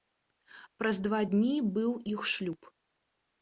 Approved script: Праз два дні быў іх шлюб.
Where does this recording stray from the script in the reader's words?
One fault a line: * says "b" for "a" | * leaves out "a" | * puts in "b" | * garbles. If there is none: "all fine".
all fine